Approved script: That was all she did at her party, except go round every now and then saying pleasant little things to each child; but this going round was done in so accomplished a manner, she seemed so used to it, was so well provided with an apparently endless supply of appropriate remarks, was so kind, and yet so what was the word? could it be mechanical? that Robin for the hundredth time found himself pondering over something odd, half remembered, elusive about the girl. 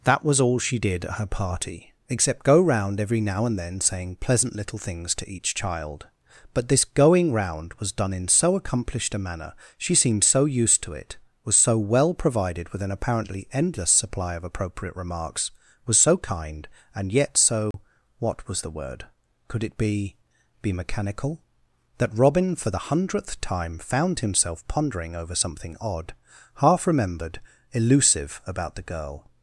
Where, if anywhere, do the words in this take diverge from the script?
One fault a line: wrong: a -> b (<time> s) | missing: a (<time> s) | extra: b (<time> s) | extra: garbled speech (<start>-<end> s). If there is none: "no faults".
extra: be (20.6 s)